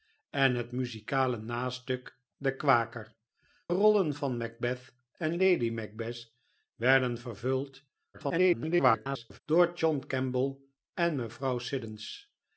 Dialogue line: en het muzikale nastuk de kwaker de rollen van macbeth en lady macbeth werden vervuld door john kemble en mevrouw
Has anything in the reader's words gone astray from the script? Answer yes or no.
yes